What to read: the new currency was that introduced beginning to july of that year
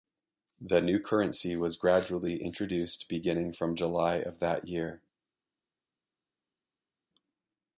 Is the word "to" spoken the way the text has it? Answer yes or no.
no